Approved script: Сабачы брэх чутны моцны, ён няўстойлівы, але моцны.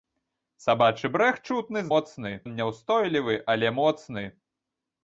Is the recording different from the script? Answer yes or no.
no